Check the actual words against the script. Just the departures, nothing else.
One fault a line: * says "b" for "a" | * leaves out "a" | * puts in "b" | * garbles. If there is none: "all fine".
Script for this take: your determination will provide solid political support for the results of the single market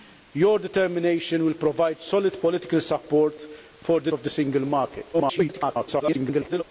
* leaves out "results"
* garbles